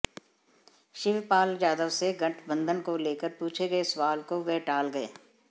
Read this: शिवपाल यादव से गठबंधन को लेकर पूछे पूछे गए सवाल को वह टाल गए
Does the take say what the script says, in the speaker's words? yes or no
no